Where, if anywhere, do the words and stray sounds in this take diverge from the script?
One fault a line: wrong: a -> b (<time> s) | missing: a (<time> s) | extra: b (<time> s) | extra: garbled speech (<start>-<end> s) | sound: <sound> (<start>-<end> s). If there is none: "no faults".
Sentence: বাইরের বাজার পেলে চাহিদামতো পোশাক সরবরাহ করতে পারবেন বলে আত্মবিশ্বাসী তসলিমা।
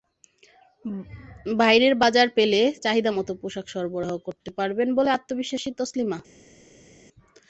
no faults